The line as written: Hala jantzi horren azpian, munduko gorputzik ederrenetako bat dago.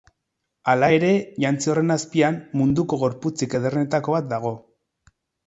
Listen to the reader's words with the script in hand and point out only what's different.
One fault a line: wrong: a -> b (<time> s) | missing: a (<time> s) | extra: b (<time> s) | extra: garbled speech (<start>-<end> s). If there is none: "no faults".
extra: ere (1.0 s)